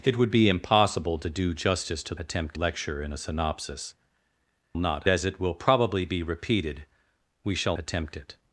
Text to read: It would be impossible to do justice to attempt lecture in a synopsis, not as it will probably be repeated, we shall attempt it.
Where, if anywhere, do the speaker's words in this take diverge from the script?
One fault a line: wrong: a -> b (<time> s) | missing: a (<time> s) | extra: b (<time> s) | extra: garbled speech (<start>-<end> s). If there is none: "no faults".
no faults